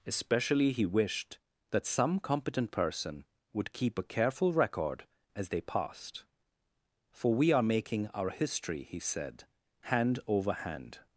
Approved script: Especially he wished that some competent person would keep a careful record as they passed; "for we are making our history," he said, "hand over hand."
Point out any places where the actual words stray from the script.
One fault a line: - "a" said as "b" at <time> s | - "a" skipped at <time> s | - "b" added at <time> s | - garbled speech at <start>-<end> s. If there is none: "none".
none